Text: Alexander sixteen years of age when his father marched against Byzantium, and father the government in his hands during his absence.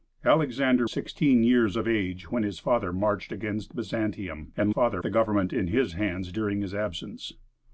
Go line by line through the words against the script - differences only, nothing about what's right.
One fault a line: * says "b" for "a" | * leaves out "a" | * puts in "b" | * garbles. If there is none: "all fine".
all fine